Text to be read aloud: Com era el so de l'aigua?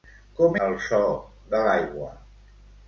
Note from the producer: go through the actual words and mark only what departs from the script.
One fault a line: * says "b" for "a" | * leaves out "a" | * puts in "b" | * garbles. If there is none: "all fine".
* leaves out "era"